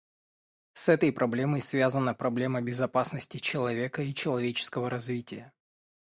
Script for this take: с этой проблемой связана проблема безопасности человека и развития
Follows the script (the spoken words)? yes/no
no